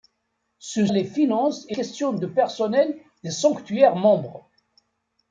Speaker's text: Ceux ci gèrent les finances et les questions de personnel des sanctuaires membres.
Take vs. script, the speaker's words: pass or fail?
fail